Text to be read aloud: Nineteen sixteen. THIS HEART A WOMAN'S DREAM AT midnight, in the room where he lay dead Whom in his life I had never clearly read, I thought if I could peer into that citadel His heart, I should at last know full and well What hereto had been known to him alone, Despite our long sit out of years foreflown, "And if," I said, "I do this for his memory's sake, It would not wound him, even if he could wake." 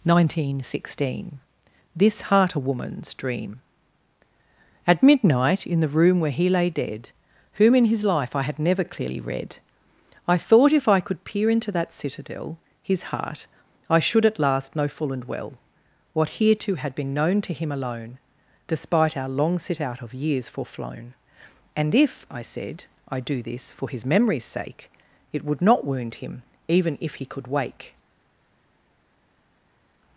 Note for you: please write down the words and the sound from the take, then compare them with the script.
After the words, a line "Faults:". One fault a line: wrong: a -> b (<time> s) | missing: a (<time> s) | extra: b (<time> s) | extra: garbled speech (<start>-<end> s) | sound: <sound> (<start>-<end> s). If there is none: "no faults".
Nineteen sixteen. THIS HEART A WOMAN'S DREAM AT midnight, in the room where he lay dead Whom in his life I had never clearly read, I thought if I could peer into that citadel His heart, I should at last know full and well What hereto had been known to him alone, Despite our long sit out of years foreflown, "And if," I said, "I do this for his memory's sake, It would not wound him, even if he could wake."
Faults:
no faults